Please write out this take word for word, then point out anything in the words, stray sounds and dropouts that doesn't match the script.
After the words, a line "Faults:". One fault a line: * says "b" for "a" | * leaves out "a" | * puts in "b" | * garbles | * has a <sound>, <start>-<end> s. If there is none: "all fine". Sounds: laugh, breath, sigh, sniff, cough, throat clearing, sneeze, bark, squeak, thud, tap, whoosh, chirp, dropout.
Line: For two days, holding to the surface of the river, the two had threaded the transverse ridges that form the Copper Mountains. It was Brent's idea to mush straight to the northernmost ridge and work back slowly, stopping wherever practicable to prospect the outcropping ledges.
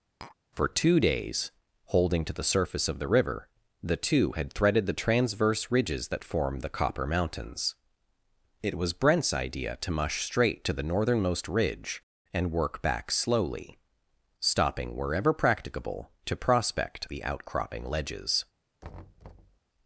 For two days, holding to the surface of the river, the two had threaded the transverse ridges that form the Copper Mountains. It was Brent's idea to mush straight to the northernmost ridge and work back slowly, stopping wherever practicable to prospect the outcropping ledges.
Faults:
* has a tap, 0.2-0.4 s
* has a thud, 18.8-19.6 s